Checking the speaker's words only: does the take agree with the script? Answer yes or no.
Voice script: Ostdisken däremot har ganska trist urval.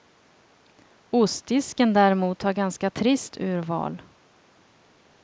yes